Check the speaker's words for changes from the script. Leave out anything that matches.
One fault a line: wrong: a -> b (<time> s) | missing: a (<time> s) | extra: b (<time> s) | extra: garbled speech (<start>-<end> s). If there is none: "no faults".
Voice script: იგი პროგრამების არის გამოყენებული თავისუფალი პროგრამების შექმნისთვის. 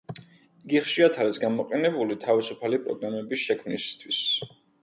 wrong: პროგრამების -> ხშირად (0.8 s)